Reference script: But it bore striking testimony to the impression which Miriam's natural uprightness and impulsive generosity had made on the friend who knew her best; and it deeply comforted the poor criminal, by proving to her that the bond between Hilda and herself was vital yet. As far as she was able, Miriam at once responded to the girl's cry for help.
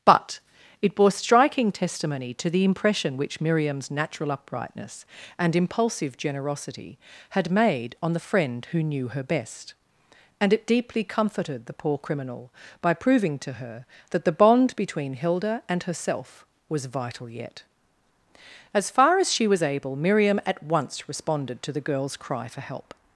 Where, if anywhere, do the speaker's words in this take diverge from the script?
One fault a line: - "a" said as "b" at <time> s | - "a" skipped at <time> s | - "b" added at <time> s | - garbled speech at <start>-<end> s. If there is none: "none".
none